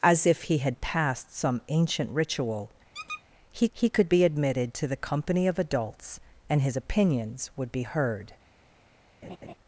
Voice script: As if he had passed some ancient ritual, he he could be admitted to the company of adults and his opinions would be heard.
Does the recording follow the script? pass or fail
pass